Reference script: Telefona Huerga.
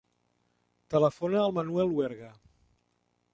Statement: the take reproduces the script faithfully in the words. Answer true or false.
false